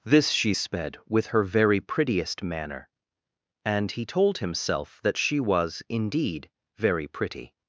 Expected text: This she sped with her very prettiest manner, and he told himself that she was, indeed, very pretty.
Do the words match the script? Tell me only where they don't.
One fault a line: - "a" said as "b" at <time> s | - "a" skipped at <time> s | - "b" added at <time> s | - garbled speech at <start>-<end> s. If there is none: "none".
none